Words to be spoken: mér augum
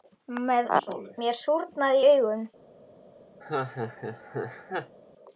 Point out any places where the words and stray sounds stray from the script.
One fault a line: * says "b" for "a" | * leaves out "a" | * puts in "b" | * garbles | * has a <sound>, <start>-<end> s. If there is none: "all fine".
* puts in "súrnaði í"
* has a laugh, 3.4-5.0 s